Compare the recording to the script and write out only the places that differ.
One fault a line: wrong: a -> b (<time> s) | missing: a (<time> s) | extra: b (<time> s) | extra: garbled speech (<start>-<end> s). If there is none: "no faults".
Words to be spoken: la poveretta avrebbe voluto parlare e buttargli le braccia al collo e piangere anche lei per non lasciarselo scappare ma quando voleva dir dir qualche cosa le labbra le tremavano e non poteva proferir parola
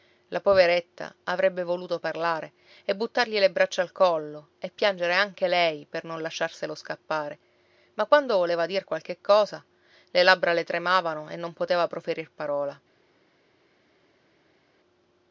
missing: dir (8.8 s)